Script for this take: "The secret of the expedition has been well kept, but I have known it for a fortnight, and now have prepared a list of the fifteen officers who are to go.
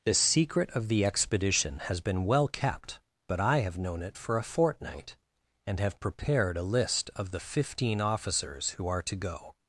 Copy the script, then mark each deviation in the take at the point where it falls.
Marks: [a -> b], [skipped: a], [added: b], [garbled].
"The secret of the expedition has been well kept, but I have known it for a fortnight, and [skipped: now] have prepared a list of the fifteen officers who are to go.